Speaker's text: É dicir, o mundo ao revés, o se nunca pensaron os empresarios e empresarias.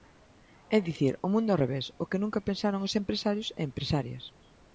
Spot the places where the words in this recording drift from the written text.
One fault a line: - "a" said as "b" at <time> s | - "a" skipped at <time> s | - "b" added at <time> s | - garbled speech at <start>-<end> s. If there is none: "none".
- "se" said as "que" at 2.1 s